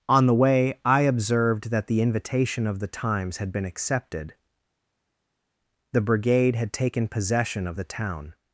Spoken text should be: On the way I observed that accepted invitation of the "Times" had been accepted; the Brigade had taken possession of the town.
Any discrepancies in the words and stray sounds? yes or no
yes